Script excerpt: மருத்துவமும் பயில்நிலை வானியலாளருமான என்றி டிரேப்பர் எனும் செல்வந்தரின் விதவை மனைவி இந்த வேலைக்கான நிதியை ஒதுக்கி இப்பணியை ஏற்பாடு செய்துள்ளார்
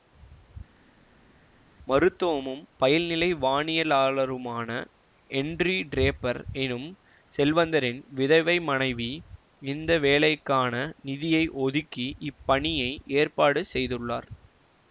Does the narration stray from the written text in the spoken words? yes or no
no